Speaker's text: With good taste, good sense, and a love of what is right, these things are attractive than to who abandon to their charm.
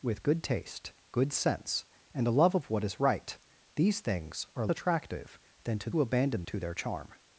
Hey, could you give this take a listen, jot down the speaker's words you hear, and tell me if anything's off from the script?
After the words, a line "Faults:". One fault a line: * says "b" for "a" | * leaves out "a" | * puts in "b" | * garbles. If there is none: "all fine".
With good taste, good sense, and a love of what is right, these things are attractive than to who abandon to their charm.
Faults:
all fine